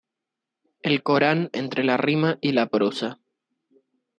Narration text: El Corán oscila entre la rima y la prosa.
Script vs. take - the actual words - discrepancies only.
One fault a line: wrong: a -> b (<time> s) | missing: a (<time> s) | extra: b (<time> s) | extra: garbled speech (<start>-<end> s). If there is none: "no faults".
missing: oscila (1.5 s)